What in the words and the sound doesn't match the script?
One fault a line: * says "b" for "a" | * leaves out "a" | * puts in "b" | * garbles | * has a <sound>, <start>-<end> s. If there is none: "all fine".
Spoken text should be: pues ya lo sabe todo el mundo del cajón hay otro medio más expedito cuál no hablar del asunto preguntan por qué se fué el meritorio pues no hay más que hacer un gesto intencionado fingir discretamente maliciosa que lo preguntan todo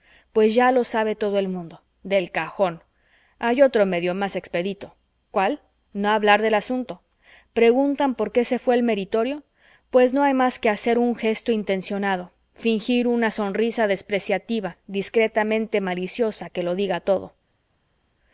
* puts in "una sonrisa despreciativa"
* says "diga" for "preguntan"